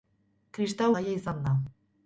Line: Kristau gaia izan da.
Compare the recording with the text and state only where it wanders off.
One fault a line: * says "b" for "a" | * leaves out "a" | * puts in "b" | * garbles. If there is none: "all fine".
all fine